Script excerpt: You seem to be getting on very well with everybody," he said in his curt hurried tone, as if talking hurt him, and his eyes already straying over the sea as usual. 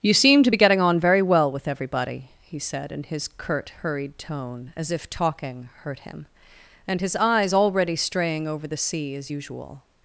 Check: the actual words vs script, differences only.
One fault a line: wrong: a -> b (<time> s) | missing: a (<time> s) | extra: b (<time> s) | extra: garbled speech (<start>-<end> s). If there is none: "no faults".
no faults